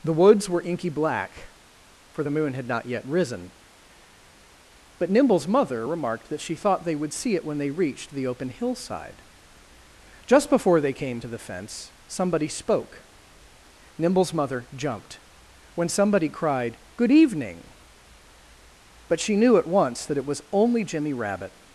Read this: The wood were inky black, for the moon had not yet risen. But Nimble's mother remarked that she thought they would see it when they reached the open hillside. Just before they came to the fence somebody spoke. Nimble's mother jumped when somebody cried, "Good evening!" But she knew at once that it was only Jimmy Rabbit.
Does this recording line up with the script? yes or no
no